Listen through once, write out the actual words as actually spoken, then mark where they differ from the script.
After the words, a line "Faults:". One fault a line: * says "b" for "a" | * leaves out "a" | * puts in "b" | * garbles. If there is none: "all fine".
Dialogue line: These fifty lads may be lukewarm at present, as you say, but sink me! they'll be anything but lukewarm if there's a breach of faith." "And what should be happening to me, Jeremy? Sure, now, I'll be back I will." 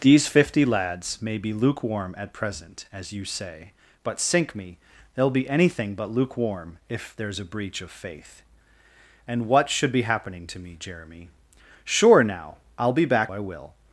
These fifty lads may be lukewarm at present, as you say, but sink me! they'll be anything but lukewarm if there's a breach of faith." "And what should be happening to me, Jeremy? Sure, now, I'll be back I will."
Faults:
all fine